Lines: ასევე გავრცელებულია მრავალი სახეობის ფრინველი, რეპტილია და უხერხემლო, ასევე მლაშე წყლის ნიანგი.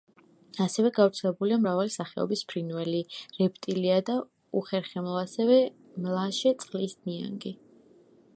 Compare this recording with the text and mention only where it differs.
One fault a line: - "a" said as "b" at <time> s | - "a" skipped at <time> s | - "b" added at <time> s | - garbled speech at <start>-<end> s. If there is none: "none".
none